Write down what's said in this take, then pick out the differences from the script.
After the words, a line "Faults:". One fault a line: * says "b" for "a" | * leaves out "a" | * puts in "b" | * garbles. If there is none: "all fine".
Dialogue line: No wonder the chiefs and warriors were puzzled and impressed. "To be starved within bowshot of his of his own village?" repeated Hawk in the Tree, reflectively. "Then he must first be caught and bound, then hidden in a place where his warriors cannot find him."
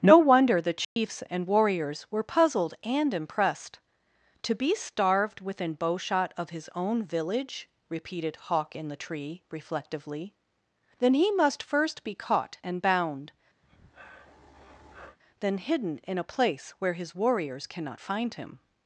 No wonder the chiefs and warriors were puzzled and impressed. "To be starved within bowshot of his own village?" repeated Hawk in the Tree, reflectively. "Then he must first be caught and bound, then hidden in a place where his warriors cannot find him."
Faults:
* leaves out "of his"